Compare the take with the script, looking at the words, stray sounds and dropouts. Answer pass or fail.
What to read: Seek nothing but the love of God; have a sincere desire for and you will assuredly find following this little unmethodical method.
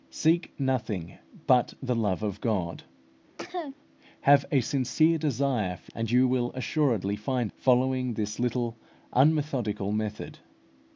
fail